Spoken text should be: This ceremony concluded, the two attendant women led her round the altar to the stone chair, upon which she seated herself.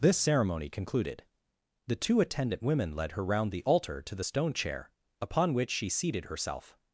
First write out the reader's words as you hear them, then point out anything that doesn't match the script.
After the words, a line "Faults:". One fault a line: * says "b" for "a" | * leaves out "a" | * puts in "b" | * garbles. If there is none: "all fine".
This ceremony concluded, the two attendant women led her round the altar to the stone chair, upon which she seated herself.
Faults:
all fine